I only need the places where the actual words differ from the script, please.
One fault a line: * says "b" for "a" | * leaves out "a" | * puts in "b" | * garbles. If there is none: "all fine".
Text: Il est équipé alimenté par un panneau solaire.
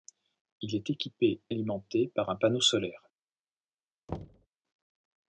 all fine